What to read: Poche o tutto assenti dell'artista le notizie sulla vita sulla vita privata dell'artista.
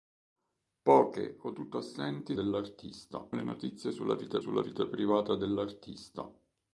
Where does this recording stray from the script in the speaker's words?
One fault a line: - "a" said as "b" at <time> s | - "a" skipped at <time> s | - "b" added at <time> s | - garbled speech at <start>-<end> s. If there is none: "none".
none